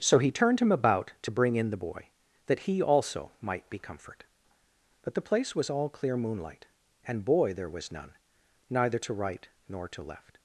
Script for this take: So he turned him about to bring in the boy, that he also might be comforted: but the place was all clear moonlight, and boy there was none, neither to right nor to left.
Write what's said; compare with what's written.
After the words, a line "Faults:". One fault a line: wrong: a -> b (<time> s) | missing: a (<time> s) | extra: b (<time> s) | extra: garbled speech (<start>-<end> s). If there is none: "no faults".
So he turned him about to bring in the boy, that he also might be comfort: but the place was all clear moonlight, and boy there was none, neither to right nor to left.
Faults:
wrong: comforted -> comfort (3.8 s)